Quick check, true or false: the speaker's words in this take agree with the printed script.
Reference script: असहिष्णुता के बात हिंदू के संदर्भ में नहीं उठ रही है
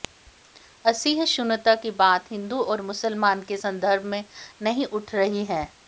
false